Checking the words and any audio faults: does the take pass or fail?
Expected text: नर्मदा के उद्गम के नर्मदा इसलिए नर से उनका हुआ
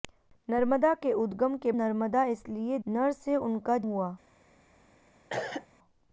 fail